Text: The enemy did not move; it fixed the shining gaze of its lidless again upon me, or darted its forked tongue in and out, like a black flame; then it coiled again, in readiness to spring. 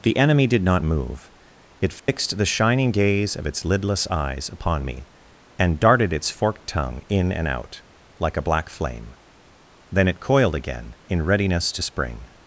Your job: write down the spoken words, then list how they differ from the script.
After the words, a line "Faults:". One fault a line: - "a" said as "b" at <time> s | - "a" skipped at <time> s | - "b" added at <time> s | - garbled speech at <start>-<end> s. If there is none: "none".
The enemy did not move; it fixed the shining gaze of its lidless eyes upon me, and darted its forked tongue in and out, like a black flame; then it coiled again, in readiness to spring.
Faults:
- "again" said as "eyes" at 4.1 s
- "or" said as "and" at 5.6 s